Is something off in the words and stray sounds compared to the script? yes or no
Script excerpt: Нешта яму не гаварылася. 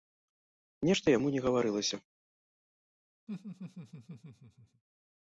yes